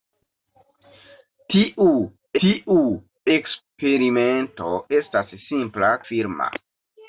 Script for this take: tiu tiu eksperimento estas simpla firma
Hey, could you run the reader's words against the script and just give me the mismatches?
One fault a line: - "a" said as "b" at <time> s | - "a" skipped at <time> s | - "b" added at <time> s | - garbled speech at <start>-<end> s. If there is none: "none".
none